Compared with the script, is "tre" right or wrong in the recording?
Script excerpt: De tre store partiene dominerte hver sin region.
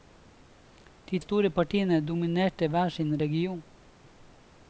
wrong